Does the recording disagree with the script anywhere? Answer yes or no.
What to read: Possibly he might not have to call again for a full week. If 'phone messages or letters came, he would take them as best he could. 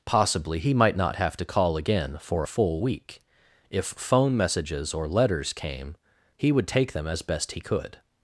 no